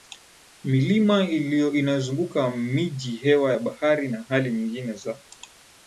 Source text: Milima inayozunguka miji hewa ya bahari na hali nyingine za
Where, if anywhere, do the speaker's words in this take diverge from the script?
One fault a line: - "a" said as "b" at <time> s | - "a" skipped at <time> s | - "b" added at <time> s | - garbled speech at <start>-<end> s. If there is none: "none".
none